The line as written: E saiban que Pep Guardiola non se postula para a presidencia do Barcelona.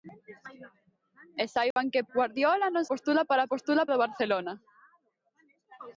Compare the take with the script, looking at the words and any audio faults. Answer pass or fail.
fail